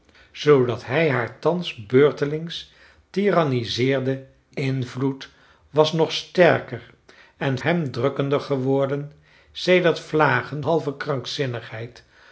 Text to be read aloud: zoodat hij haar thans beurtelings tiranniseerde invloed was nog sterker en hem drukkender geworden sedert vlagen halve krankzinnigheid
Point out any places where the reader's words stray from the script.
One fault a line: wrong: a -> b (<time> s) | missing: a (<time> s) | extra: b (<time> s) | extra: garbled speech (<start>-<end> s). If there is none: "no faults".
no faults